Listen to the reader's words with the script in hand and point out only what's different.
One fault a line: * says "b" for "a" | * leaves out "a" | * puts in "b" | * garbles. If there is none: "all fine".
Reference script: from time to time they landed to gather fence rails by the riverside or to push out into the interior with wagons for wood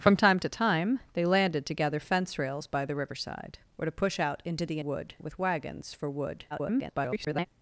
* says "wood" for "interior"
* garbles